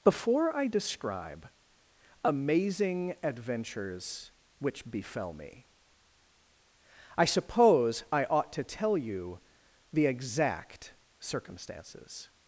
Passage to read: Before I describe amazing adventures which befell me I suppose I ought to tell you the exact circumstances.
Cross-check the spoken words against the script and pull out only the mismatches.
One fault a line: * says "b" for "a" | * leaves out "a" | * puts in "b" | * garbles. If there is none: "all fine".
all fine